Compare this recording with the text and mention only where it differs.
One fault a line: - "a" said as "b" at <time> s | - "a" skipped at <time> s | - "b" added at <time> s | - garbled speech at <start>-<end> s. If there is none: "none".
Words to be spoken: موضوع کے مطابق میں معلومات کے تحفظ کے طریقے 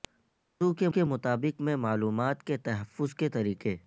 - "کے" added at 0.9 s